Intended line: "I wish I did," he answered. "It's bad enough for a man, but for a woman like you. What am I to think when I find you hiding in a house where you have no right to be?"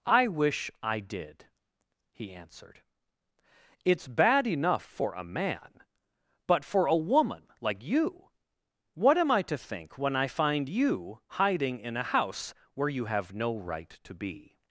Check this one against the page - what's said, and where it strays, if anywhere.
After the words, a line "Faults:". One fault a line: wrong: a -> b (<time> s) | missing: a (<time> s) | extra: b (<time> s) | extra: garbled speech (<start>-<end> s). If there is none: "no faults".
"I wish I did," he answered. "It's bad enough for a man, but for a woman like you. What am I to think when I find you hiding in a house where you have no right to be?"
Faults:
no faults